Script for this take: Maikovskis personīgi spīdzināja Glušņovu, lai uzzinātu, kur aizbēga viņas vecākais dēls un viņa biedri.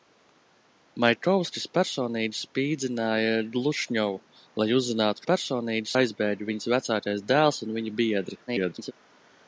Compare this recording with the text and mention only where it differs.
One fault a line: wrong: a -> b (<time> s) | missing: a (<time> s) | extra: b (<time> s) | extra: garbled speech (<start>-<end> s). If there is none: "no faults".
wrong: kur -> personīgi (5.3 s)
extra: garbled speech (8.5-8.9 s)